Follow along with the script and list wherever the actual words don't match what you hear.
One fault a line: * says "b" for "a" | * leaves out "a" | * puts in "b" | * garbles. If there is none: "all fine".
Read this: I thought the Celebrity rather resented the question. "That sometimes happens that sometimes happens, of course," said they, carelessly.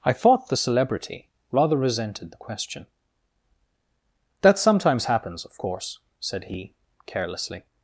* leaves out "that sometimes happens"
* says "he" for "they"